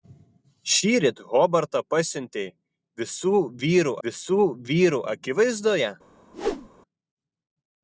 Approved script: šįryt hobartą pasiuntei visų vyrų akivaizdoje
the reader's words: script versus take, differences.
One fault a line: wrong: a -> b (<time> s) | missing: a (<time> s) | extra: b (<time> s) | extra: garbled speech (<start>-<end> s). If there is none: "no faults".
extra: visų vyrų (4.1 s)